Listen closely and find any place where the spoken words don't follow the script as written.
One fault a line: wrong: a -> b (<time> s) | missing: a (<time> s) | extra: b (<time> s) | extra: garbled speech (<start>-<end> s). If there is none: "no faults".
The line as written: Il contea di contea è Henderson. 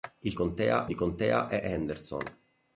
no faults